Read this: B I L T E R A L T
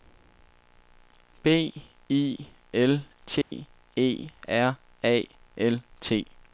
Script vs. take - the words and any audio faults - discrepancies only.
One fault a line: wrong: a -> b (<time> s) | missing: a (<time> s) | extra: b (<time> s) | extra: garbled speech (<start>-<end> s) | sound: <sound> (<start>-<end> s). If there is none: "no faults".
sound: dropout (3.4-3.5 s)